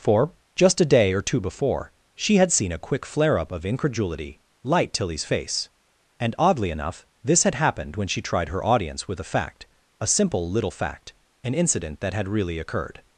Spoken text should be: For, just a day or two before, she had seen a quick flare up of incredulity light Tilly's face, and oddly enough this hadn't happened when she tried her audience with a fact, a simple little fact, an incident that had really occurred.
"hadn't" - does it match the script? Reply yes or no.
no